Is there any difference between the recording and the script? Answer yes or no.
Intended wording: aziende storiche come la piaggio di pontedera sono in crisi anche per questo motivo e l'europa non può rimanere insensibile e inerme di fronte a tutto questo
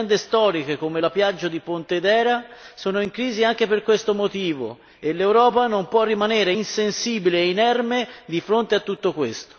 no